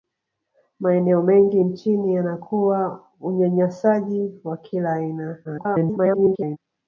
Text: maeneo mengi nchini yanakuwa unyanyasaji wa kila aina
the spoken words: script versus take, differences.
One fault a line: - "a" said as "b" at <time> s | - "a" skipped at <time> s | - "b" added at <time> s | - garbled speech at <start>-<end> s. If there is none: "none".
- garbled speech at 5.4-6.6 s